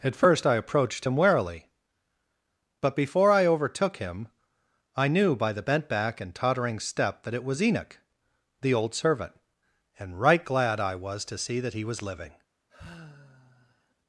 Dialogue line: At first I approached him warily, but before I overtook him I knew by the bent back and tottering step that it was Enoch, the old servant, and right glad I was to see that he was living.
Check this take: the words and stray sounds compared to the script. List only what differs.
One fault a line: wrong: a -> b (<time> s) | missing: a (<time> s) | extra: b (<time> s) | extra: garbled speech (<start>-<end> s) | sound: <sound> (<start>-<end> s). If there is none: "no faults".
sound: sigh (12.7-13.9 s)